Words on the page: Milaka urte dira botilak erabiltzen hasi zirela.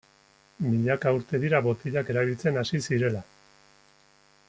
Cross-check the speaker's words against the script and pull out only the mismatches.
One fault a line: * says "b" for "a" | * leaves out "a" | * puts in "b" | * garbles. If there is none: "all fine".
all fine